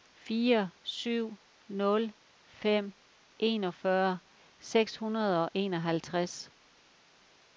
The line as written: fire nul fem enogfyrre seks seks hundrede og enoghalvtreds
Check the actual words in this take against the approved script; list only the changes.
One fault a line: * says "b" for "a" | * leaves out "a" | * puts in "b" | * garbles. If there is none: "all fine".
* puts in "syv"
* leaves out "seks"